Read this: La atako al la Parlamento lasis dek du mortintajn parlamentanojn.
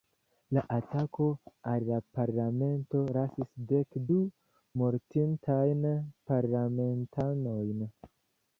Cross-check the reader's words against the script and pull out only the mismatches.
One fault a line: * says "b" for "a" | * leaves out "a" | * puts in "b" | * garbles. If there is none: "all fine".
all fine